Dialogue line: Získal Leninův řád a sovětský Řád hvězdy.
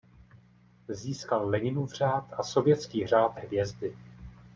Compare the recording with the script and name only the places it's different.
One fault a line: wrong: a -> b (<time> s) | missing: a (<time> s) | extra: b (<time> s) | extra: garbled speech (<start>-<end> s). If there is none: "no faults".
no faults